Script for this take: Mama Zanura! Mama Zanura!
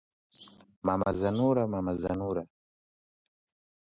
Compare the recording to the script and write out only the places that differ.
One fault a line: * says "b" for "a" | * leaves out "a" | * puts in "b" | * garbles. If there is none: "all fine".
all fine